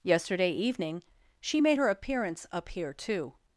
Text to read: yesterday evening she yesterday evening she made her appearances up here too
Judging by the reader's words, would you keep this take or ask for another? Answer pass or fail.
fail